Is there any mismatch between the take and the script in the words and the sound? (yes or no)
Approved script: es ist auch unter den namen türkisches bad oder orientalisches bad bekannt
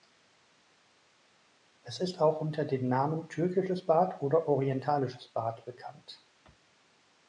no